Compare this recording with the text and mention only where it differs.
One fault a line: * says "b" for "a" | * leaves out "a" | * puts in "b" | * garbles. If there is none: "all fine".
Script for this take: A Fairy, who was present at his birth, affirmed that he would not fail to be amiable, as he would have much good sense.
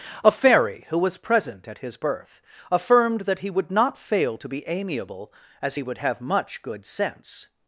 all fine